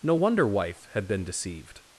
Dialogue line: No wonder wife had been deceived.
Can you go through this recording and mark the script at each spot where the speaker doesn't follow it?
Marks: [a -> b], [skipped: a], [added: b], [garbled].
No wonder wife had been deceived.